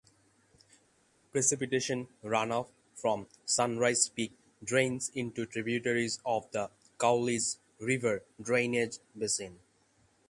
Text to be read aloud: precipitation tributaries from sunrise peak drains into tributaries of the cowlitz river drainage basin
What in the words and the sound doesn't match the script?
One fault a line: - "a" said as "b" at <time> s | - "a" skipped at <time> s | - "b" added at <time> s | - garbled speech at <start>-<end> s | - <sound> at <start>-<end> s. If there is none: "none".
- "tributaries" said as "runoff" at 2.2 s